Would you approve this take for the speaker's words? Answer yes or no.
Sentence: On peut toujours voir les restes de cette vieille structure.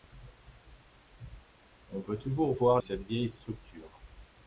no